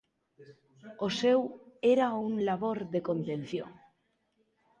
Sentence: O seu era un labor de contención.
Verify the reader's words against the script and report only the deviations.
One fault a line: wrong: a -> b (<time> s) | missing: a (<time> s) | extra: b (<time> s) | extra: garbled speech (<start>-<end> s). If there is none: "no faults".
no faults